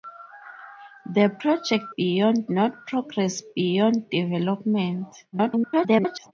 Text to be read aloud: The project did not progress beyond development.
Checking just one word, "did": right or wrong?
wrong